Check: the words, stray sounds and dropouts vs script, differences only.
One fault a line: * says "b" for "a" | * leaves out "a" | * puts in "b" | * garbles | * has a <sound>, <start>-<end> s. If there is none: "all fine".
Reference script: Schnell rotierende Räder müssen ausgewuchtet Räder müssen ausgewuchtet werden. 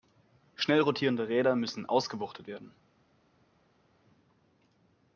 * leaves out "Räder müssen ausgewuchtet"